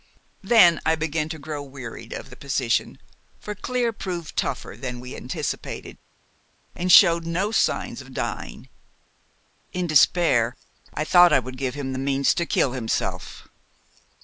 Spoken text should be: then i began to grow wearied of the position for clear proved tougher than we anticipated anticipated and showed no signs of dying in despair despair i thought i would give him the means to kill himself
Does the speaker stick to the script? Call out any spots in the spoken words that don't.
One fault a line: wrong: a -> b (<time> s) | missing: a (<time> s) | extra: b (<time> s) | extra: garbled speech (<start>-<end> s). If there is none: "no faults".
missing: anticipated (6.0 s)
missing: despair (10.5 s)